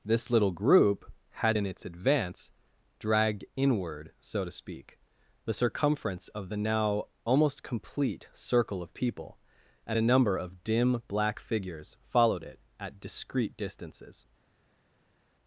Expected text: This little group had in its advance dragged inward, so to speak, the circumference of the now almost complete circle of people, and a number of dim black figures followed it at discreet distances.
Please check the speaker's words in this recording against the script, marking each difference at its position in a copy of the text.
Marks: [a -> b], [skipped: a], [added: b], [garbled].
This little group had in its advance dragged inward, so to speak, the circumference of the now almost complete circle of people, and a number of dim black figures followed it at discreet distances.